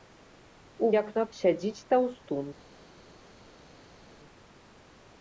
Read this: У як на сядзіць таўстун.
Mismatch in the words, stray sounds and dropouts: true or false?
false